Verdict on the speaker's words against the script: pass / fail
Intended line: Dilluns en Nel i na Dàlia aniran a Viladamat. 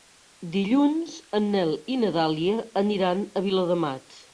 pass